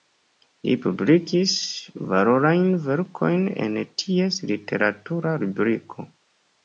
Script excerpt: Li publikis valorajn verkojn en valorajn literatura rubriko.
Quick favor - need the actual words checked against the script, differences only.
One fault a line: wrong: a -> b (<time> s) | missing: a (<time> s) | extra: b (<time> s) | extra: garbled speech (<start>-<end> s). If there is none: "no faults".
wrong: valorajn -> ties (4.0 s)